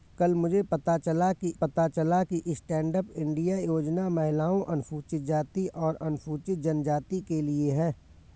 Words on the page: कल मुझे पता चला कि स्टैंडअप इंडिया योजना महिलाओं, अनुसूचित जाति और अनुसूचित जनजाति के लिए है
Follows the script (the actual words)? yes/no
no